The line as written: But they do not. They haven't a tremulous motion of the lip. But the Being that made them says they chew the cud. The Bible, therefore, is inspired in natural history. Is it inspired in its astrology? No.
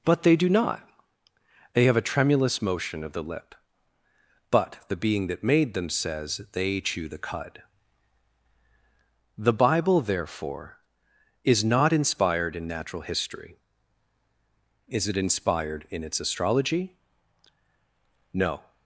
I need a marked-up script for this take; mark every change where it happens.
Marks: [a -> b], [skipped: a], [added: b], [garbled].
But they do not. They [haven't -> have] a tremulous motion of the lip. But the Being that made them says they chew the cud. The Bible, therefore, is [added: not] inspired in natural history. Is it inspired in its astrology? No.